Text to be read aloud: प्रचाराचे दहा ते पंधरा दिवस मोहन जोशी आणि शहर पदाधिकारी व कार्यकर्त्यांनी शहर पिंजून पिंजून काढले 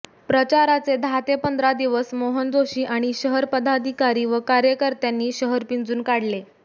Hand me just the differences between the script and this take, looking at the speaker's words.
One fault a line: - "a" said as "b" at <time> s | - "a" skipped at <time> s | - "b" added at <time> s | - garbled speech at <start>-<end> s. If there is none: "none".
- "पिंजून" skipped at 6.0 s